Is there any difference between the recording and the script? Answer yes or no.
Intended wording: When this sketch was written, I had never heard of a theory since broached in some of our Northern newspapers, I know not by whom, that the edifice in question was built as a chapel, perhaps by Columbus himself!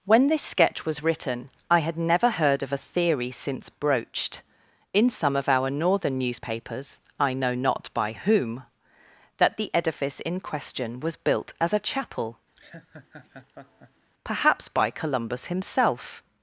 no